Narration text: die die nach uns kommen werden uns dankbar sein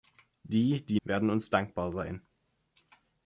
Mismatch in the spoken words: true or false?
true